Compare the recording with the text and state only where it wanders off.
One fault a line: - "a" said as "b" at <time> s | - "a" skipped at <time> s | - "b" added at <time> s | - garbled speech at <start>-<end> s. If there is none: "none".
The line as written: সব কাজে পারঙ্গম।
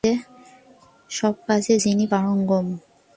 - "যিনি" added at 1.8 s